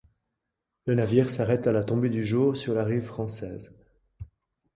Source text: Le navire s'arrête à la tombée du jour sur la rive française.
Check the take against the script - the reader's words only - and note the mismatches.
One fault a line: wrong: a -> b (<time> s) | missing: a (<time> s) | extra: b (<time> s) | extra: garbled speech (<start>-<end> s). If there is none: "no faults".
no faults